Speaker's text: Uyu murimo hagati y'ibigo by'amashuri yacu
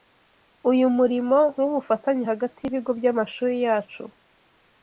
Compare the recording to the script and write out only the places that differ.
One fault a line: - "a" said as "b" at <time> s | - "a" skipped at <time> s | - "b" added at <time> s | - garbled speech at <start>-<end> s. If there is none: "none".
- "w'ubufatanye" added at 1.6 s